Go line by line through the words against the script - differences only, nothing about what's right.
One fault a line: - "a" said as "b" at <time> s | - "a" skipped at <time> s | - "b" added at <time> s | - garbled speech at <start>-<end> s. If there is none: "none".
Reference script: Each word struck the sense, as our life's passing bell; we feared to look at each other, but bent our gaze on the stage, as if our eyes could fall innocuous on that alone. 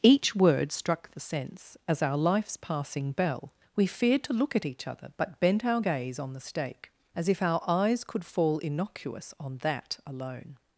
- "stage" said as "stake" at 6.4 s